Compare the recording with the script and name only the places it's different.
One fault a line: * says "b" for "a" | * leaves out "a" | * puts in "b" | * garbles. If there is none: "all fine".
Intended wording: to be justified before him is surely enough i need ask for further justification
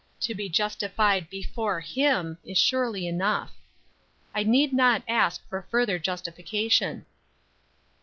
* puts in "not"